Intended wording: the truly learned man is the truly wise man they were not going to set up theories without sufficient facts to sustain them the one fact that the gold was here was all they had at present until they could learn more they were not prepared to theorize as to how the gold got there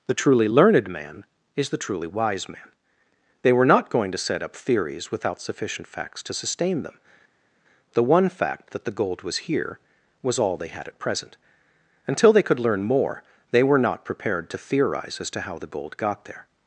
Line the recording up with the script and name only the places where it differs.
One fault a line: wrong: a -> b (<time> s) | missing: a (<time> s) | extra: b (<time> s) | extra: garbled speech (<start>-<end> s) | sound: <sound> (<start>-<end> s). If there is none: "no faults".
no faults